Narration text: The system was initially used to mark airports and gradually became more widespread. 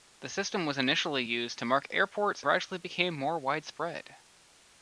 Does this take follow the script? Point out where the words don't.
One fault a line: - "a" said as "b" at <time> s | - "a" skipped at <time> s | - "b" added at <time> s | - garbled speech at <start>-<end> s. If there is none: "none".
- "and" skipped at 2.4 s